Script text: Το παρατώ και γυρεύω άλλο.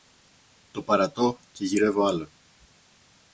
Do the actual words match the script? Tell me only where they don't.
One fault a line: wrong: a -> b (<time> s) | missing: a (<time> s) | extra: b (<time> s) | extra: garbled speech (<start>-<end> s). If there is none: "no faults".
no faults